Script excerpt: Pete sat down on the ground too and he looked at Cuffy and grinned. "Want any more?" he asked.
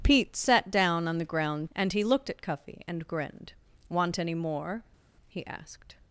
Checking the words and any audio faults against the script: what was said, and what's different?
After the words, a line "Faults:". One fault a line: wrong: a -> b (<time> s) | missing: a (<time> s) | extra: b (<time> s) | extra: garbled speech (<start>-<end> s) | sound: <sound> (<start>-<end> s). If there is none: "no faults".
Pete sat down on the ground and he looked at Cuffy and grinned. "Want any more?" he asked.
Faults:
missing: too (1.7 s)